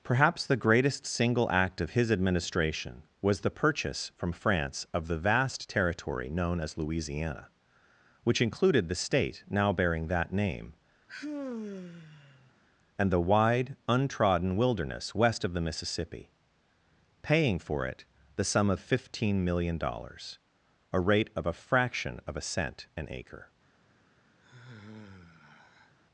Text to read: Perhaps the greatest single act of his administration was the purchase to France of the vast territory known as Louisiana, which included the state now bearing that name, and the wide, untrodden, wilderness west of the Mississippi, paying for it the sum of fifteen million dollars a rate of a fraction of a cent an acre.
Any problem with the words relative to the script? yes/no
yes